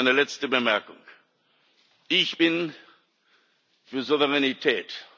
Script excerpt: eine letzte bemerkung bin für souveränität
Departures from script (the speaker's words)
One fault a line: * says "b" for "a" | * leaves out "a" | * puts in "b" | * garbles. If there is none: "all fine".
* puts in "ich"